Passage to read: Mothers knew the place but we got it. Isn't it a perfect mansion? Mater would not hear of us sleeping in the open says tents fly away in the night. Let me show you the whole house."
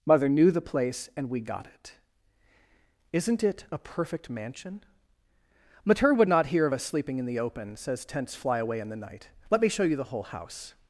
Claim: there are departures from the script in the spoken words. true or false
true